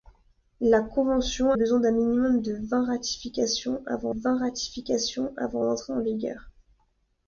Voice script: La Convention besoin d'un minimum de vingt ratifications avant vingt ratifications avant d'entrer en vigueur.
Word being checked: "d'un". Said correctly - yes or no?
yes